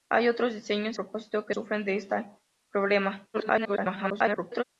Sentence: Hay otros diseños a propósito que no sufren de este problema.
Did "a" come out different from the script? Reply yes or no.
yes